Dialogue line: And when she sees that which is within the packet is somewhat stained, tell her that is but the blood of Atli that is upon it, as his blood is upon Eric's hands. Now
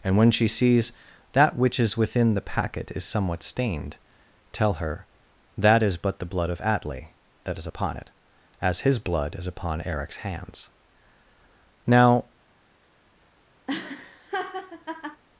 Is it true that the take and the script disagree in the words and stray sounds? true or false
true